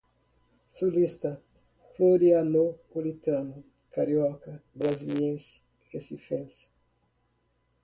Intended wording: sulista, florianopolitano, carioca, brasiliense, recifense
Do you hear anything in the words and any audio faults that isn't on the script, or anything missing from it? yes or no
no